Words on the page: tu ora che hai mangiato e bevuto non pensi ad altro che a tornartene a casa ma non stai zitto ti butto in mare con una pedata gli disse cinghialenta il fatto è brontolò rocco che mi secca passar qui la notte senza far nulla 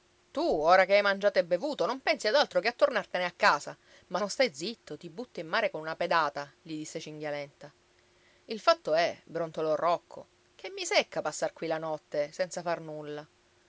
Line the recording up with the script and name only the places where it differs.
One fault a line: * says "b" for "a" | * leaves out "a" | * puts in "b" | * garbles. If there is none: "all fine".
all fine